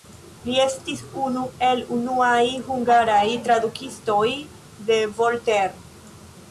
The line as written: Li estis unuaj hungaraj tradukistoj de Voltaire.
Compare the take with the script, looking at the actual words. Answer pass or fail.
fail